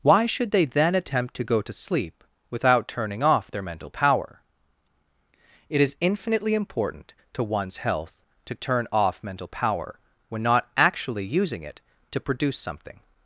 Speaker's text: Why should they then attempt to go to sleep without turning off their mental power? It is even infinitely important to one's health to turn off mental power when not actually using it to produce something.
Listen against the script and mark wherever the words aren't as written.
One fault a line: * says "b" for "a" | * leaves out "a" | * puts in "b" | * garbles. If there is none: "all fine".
* leaves out "even"